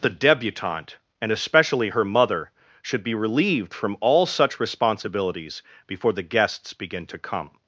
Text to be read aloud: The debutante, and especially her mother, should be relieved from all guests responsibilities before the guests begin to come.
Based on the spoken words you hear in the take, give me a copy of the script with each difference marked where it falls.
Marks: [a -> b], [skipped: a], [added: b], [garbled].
The debutante, and especially her mother, should be relieved from all [guests -> such] responsibilities before the guests begin to come.